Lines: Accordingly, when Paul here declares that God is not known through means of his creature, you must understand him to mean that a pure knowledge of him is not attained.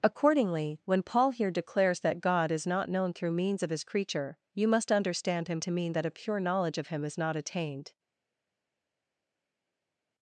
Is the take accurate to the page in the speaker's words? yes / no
yes